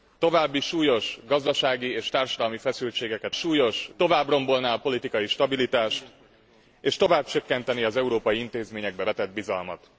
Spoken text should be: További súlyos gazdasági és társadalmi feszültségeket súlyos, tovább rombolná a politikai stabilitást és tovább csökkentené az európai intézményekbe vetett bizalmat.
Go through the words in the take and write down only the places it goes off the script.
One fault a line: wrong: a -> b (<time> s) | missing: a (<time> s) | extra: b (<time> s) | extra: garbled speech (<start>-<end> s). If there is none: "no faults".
no faults